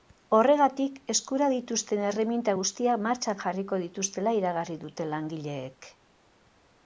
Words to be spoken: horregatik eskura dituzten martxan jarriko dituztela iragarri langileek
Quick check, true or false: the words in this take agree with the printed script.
false